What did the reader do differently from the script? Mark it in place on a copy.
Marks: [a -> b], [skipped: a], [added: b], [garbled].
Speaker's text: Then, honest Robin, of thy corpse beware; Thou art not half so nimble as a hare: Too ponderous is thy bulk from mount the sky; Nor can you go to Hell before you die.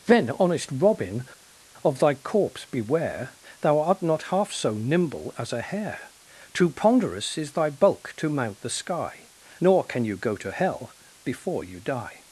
Then, honest Robin, of thy corpse beware; Thou art not half so nimble as a hare: Too ponderous is thy bulk [from -> to] mount the sky; Nor can you go to Hell before you die.